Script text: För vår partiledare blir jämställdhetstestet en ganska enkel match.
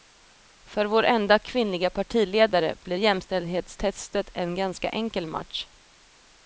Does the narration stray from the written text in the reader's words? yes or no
yes